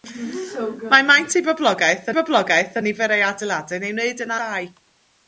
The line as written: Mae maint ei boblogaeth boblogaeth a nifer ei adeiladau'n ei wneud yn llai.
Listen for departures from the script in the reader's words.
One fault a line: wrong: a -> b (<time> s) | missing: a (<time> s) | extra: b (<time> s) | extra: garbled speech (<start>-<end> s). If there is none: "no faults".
no faults